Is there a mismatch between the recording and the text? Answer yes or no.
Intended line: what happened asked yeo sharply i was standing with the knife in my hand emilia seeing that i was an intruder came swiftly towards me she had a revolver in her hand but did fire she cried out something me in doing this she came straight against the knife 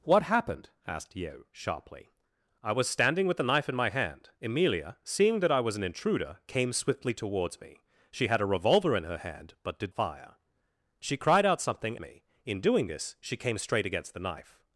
no